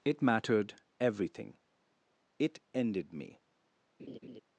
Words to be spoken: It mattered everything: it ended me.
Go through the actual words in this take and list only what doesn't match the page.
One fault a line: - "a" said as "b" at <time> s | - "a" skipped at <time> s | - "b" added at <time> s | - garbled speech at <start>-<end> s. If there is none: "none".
none